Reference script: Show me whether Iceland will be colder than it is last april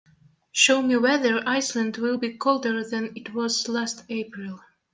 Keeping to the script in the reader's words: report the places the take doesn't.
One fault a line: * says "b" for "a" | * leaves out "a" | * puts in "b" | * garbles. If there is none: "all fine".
* says "was" for "is"